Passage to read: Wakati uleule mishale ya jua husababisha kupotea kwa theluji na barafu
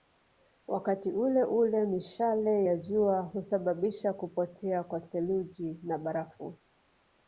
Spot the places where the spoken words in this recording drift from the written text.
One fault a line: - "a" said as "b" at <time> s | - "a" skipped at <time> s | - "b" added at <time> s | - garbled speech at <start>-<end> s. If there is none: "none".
none